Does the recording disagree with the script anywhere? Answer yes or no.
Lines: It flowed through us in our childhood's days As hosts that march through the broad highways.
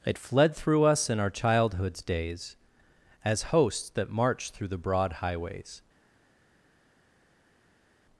yes